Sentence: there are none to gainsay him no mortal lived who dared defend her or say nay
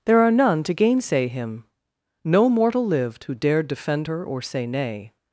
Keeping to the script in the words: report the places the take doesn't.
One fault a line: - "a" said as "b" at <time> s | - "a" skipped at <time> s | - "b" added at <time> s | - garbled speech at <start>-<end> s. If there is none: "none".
none